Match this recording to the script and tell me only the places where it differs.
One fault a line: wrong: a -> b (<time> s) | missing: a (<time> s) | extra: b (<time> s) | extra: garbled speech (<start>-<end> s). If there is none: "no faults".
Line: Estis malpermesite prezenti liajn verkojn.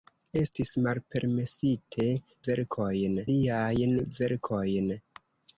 wrong: prezenti -> verkojn (2.5 s)